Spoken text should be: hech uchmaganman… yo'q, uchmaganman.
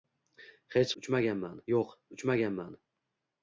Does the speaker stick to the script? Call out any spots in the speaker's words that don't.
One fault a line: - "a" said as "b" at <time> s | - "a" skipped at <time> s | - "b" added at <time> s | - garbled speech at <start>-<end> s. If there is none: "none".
none